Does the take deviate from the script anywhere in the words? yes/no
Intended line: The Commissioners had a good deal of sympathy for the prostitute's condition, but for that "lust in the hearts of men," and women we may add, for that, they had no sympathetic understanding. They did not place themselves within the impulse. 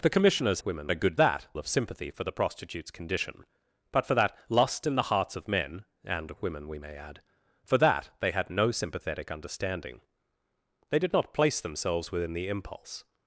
yes